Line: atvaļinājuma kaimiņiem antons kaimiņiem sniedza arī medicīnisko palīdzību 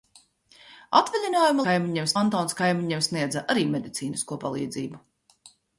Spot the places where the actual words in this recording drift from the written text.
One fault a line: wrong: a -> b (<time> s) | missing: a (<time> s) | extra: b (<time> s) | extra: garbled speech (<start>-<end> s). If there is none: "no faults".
no faults